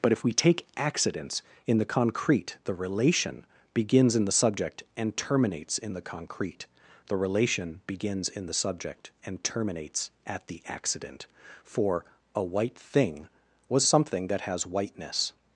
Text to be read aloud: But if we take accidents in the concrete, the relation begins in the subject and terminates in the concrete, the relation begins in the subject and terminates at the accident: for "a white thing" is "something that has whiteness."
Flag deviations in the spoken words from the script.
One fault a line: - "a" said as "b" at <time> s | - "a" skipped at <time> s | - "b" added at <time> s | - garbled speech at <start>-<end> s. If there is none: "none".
- "is" said as "was" at 13.7 s